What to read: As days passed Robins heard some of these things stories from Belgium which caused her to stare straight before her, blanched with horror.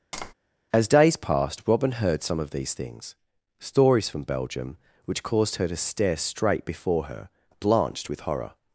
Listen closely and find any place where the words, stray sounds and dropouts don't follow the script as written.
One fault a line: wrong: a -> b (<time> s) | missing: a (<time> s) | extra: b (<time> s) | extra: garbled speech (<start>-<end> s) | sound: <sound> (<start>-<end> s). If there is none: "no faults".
sound: tap (0.1-0.3 s)
wrong: Robins -> Robin (1.7 s)